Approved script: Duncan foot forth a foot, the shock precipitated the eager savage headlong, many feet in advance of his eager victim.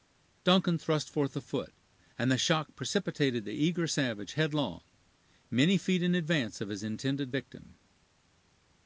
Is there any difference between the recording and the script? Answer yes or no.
yes